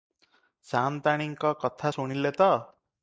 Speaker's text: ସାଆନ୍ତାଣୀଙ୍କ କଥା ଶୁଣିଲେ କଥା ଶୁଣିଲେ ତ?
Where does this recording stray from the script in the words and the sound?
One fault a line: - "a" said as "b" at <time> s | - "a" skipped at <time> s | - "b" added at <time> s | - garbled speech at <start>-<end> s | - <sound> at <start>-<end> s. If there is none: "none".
- "କଥା ଶୁଣିଲେ" skipped at 2.3 s